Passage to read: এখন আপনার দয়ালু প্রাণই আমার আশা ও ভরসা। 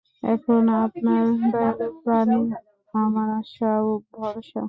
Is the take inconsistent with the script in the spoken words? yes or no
no